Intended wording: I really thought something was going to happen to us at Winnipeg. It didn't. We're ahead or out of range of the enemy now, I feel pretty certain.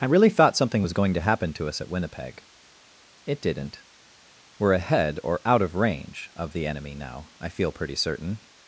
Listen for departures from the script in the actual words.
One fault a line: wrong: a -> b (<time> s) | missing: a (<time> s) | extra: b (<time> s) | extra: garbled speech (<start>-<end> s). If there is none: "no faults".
no faults